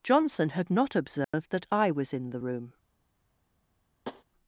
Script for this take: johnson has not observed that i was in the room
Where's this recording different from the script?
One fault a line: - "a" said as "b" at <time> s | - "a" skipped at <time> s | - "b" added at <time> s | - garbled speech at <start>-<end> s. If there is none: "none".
- "has" said as "had" at 0.5 s